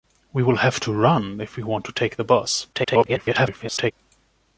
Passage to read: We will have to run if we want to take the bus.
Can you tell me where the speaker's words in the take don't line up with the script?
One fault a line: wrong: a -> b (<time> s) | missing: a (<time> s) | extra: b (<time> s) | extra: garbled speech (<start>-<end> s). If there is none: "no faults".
extra: garbled speech (2.7-3.9 s)